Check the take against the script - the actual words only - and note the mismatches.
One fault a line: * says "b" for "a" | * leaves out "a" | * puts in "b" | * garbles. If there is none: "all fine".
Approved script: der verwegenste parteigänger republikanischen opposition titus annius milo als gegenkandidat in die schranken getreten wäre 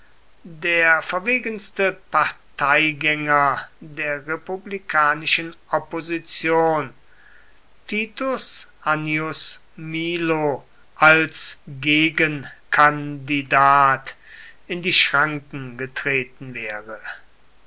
* puts in "der"